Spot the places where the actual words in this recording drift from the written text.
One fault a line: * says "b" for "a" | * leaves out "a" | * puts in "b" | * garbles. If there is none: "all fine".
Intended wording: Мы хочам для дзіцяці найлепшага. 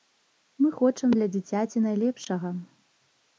all fine